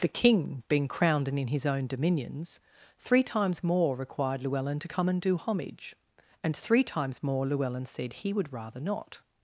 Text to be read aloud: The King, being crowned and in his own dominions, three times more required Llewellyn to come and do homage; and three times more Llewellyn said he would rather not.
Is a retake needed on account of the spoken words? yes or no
no